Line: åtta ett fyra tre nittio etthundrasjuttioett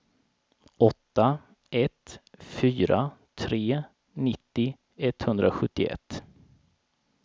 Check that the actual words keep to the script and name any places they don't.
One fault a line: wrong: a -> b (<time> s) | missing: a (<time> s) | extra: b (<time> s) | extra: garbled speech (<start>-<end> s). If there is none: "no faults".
no faults